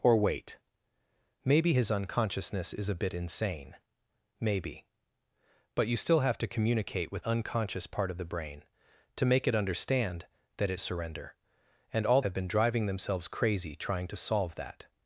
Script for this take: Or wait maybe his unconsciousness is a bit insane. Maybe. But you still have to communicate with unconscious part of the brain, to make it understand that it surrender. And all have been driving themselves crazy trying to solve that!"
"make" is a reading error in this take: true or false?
false